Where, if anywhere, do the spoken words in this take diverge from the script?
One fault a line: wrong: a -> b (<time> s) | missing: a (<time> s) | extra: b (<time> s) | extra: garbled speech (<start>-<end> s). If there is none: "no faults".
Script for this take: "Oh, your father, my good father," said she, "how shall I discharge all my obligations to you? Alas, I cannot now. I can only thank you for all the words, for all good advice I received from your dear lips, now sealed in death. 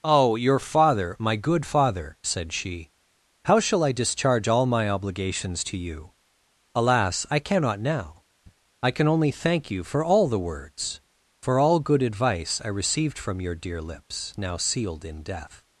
no faults